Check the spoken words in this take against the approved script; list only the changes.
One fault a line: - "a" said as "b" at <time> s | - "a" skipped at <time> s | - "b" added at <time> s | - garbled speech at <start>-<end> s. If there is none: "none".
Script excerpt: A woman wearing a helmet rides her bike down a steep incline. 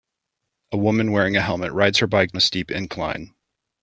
- "down" skipped at 2.3 s